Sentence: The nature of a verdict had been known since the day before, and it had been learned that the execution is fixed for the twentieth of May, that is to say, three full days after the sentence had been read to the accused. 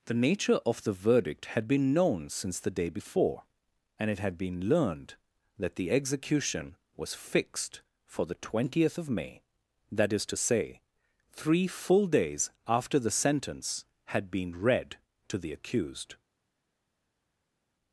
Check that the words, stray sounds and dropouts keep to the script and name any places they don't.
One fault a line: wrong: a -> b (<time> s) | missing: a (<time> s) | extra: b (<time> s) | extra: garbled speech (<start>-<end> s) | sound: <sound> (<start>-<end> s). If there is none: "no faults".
wrong: a -> the (0.8 s)
wrong: is -> was (6.9 s)